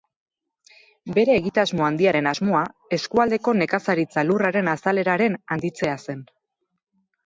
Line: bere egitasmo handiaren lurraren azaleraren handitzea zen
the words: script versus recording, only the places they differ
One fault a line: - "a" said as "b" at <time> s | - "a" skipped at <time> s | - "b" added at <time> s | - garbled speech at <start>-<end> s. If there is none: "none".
- "asmoa eskualdeko nekazaritza" added at 2.3 s